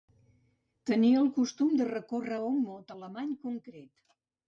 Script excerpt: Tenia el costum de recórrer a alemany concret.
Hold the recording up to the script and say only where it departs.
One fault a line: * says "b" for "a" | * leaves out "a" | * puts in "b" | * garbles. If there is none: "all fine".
* puts in "un mot"